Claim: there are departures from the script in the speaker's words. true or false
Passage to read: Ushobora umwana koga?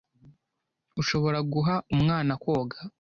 true